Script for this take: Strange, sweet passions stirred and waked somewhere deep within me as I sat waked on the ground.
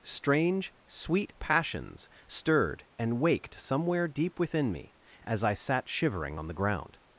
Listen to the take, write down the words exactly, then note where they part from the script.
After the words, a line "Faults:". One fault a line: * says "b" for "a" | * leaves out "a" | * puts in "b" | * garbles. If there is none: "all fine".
Strange, sweet passions stirred and waked somewhere deep within me as I sat shivering on the ground.
Faults:
* says "shivering" for "waked"